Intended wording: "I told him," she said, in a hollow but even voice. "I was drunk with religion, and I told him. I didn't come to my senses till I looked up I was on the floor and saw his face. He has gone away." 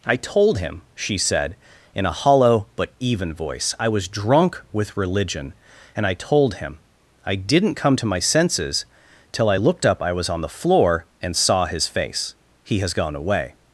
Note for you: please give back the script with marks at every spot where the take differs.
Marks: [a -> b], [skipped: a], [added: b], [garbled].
"I told him," she said, in a hollow but even voice. "I was drunk with religion, and I told him. I didn't come to my senses till I looked up I was on the floor and saw his face. He has gone away."